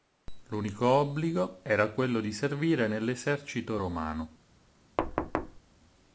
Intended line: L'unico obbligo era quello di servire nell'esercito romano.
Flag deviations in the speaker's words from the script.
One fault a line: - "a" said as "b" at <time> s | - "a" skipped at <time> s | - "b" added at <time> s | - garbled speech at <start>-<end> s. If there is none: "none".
none